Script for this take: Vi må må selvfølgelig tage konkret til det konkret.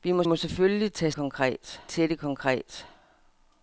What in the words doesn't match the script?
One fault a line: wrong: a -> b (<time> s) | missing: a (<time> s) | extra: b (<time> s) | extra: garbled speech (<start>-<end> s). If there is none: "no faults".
no faults